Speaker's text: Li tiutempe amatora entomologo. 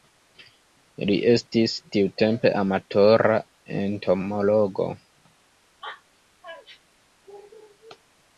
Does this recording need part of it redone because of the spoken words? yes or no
yes